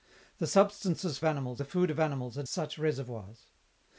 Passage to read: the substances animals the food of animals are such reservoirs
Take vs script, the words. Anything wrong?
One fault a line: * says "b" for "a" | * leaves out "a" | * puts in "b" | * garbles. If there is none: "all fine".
all fine